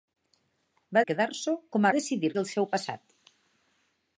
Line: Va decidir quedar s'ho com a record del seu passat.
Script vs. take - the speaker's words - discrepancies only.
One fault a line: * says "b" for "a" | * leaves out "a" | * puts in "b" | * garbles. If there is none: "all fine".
* leaves out "decidir"
* says "decidir" for "record"